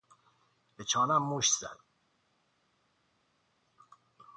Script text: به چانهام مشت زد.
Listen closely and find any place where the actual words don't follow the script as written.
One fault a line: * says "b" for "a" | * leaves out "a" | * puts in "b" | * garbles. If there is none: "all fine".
all fine